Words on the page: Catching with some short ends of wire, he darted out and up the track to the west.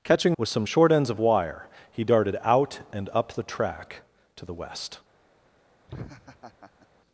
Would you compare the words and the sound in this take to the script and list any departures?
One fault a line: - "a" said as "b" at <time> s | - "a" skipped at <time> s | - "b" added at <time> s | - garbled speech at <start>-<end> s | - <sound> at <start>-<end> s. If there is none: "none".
- laugh at 5.9-6.9 s